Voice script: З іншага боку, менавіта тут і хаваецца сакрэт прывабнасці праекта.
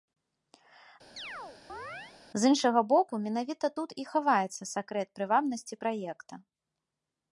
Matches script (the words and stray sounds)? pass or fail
fail